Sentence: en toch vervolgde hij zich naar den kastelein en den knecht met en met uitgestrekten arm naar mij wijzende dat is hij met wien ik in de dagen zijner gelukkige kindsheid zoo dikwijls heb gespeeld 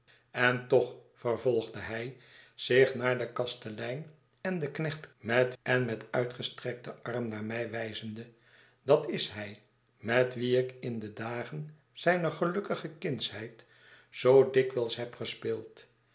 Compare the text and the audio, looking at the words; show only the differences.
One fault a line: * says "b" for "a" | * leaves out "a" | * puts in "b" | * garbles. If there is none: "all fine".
all fine